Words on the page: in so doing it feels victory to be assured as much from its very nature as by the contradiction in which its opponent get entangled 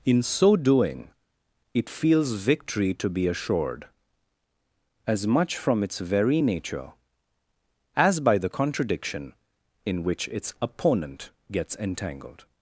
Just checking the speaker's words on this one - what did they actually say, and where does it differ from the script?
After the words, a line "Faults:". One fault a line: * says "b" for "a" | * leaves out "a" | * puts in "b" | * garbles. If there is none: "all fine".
in so doing it feels victory to be assured as much from its very nature as by the contradiction in which its opponent gets entangled
Faults:
* says "gets" for "get"